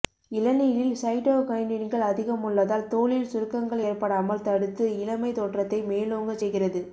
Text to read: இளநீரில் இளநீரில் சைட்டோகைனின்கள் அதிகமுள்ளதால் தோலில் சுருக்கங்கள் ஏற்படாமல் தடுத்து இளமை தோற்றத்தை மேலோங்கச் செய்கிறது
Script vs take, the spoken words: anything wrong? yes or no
yes